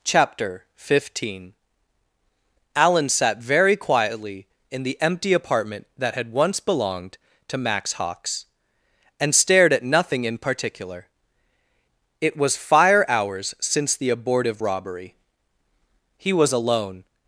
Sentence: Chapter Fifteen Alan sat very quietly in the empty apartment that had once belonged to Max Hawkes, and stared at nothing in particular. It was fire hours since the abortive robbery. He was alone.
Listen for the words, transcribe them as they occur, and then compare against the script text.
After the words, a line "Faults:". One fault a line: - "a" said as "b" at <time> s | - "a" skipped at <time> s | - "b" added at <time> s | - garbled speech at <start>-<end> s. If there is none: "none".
Chapter Fifteen Alan sat very quietly in the empty apartment that had once belonged to Max Hawkes, and stared at nothing in particular. It was fire hours since the abortive robbery. He was alone.
Faults:
none